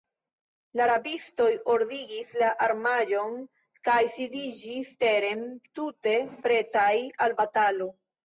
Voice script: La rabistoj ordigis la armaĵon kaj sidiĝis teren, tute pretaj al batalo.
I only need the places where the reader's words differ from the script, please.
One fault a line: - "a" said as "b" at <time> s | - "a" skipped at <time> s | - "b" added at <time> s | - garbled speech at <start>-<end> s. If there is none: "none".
none